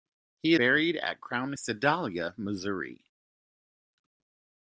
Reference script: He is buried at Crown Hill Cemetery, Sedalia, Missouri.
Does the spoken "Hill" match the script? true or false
false